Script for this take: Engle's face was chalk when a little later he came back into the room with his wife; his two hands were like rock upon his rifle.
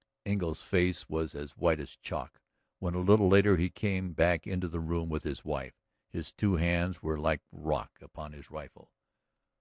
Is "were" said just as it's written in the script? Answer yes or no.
yes